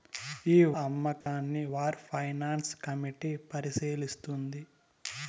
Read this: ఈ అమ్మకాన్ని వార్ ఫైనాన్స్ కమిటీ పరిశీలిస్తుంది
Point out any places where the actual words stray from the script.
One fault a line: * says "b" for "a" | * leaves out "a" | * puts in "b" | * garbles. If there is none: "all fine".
all fine